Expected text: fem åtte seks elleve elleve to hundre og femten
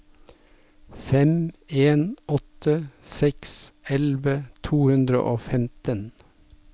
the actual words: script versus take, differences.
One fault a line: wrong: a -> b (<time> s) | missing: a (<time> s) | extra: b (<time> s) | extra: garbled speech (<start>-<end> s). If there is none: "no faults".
extra: en (1.7 s)
missing: elleve (4.3 s)